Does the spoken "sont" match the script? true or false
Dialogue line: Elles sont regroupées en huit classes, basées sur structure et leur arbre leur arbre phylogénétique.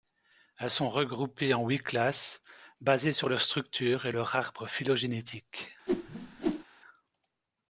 true